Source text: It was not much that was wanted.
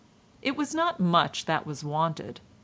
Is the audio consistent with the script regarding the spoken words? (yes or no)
yes